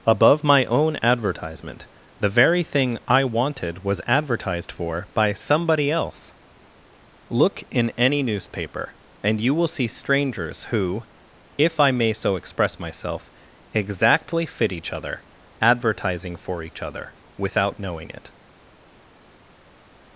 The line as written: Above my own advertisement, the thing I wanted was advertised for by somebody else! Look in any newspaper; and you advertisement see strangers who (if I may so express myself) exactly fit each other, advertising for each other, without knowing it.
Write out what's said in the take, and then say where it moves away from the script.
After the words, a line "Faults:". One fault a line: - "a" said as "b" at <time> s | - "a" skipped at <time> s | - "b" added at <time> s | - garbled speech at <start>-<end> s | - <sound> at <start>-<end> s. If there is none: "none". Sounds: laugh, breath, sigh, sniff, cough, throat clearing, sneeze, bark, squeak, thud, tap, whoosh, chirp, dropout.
Above my own advertisement, the very thing I wanted was advertised for by somebody else! Look in any newspaper; and you will see strangers who (if I may so express myself) exactly fit each other, advertising for each other, without knowing it.
Faults:
- "very" added at 2.3 s
- "advertisement" said as "will" at 9.5 s